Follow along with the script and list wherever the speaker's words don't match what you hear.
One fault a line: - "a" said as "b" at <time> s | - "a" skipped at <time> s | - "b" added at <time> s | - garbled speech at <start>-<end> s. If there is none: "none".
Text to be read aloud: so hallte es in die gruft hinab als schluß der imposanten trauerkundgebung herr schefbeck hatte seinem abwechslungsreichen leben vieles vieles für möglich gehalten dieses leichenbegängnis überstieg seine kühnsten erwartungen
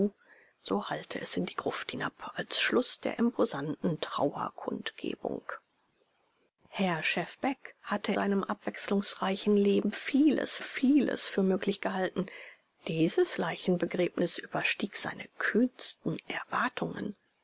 none